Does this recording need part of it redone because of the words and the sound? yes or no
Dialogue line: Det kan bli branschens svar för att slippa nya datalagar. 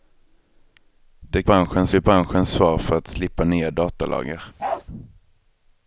yes